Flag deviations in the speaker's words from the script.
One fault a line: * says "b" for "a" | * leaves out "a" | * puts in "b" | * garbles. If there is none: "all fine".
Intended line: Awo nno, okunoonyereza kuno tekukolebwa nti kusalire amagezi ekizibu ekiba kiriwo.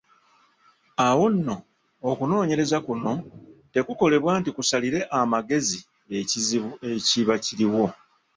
all fine